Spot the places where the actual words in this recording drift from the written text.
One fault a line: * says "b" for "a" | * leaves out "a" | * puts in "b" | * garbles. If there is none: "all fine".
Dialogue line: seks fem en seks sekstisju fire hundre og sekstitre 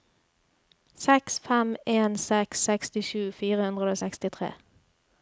all fine